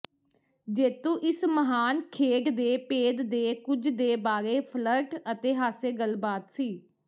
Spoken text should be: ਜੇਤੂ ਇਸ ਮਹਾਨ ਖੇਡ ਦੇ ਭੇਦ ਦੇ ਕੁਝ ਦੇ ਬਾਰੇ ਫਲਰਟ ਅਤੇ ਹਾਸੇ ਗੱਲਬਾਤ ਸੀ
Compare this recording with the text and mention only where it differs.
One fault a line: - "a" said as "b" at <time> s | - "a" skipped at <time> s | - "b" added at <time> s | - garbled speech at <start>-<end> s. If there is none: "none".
none